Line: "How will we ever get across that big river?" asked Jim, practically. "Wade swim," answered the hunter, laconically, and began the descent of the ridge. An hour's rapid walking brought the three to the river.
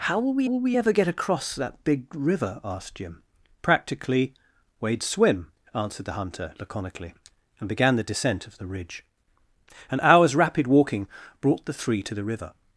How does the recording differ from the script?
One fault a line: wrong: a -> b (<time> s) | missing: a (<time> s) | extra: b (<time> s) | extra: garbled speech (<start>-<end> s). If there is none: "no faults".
extra: will we (0.4 s)